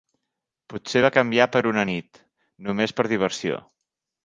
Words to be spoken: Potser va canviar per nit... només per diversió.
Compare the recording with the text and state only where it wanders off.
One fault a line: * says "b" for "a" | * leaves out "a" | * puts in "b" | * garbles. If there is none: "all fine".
* puts in "una"